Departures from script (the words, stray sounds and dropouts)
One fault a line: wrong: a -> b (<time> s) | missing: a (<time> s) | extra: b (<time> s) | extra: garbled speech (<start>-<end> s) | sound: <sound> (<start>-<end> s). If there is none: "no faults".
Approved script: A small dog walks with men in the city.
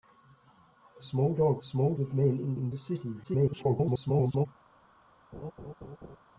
wrong: walks -> small (1.6 s)
extra: in (2.5 s)
extra: garbled speech (3.2-4.5 s)
sound: laugh (5.3-6.2 s)